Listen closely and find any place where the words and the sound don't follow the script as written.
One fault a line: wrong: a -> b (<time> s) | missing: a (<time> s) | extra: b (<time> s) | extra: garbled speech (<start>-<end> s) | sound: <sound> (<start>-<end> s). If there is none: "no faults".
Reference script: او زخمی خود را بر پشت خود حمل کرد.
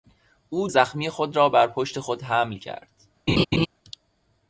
sound: laugh (3.3-3.7 s)